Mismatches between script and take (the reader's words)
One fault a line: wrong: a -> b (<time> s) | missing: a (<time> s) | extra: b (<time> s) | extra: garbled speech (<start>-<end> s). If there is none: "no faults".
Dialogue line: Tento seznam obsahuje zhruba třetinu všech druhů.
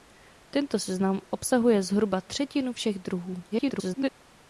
extra: garbled speech (3.5-4.1 s)